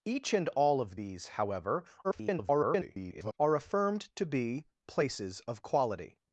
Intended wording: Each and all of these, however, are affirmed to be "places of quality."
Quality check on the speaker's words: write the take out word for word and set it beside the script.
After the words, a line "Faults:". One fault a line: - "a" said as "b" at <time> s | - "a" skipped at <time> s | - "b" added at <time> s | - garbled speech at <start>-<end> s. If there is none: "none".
Each and all of these, however, [garbled] are affirmed to be "places of quality."
Faults:
- garbled speech at 2.0-3.4 s